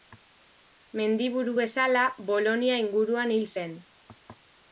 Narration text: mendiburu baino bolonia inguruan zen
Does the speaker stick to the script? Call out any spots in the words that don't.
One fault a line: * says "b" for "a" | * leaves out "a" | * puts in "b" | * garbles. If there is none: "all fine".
* says "bezala" for "baino"
* puts in "hil"